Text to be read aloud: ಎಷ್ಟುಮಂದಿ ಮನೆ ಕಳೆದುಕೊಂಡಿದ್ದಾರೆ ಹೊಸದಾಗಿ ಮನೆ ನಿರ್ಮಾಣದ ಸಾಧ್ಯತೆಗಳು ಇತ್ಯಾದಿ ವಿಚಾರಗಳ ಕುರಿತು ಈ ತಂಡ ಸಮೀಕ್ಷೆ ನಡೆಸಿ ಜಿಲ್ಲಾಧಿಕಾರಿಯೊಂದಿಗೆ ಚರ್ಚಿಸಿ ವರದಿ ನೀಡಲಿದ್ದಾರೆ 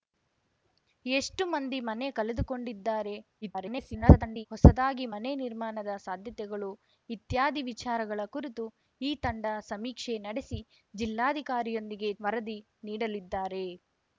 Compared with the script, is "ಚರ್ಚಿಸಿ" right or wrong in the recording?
wrong